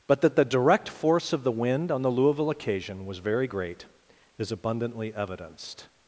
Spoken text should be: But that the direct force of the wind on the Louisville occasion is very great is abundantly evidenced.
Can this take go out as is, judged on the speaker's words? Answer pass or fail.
fail